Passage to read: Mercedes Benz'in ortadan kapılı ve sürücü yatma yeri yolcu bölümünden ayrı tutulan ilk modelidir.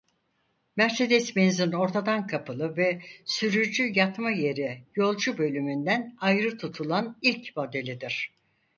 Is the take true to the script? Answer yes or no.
yes